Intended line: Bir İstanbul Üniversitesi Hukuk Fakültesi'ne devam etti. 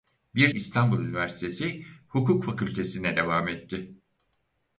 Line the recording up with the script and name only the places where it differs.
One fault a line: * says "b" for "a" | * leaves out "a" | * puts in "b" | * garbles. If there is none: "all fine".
all fine